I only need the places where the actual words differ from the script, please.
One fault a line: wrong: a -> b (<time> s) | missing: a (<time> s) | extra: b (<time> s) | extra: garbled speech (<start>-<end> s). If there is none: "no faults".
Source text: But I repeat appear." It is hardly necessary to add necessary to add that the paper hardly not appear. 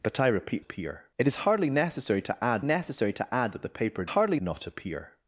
no faults